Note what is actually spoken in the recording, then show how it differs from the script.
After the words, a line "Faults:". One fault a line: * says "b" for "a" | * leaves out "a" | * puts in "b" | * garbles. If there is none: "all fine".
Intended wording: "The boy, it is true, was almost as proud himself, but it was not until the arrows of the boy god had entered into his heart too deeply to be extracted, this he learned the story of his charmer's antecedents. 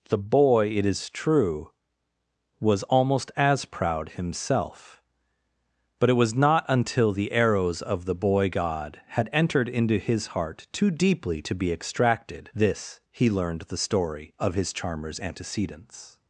"The boy, it is true, was almost as proud himself, but it was not until the arrows of the boy god had entered into his heart too deeply to be extracted, this he learned the story of his charmer's antecedents.
Faults:
all fine